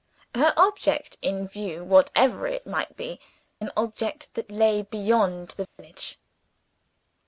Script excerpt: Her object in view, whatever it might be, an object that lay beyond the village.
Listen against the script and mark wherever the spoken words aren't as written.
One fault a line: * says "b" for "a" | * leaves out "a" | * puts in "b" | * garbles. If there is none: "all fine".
all fine